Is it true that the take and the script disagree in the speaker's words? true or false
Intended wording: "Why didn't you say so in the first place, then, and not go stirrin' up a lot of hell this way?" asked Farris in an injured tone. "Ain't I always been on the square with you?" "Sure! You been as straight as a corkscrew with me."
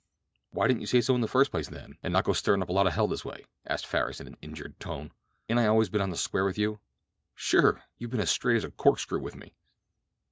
false